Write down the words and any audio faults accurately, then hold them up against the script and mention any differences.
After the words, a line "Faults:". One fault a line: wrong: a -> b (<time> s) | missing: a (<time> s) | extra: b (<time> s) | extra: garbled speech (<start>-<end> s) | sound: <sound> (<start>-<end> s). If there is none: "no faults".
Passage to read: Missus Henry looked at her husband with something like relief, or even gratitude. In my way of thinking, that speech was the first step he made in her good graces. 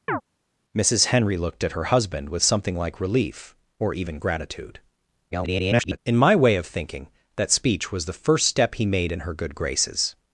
Missus Henry looked at her husband with something like relief, or even gratitude. [garbled] In my way of thinking, that speech was the first step he made in her good graces.
Faults:
sound: chirp (0.1-0.2 s)
extra: garbled speech (5.3-6.0 s)